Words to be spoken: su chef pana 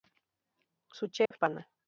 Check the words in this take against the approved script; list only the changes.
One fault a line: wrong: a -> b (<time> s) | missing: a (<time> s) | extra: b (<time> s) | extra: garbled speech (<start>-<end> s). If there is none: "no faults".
no faults